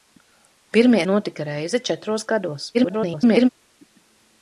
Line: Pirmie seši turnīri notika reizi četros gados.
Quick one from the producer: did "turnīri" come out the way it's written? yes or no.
no